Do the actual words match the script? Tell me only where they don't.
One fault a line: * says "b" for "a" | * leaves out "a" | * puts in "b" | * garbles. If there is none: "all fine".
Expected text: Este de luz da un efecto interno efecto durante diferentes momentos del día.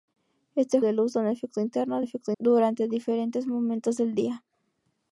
all fine